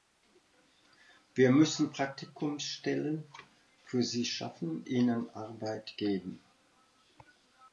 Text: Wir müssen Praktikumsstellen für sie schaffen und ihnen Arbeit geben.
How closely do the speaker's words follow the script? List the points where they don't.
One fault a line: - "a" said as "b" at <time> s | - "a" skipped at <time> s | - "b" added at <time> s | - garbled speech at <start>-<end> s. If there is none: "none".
- "und" skipped at 4.8 s